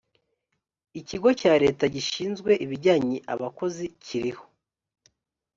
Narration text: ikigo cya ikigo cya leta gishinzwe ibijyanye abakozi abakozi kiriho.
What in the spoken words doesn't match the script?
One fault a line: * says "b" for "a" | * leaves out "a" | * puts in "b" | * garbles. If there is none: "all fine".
* leaves out "ikigo cya"
* leaves out "abakozi"